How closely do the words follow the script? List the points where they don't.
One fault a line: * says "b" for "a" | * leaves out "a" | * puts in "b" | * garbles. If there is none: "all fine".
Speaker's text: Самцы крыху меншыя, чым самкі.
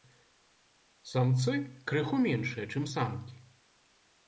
all fine